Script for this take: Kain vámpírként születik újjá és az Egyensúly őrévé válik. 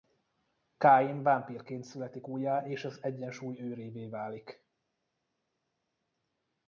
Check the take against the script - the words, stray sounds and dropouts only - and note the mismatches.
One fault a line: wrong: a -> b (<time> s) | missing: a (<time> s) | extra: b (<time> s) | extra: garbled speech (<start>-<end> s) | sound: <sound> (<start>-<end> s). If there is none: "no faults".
no faults